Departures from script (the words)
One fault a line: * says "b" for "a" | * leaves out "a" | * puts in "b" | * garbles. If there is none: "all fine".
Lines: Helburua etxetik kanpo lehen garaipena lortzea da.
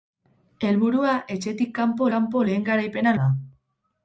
* puts in "kanpo"
* leaves out "lortzea"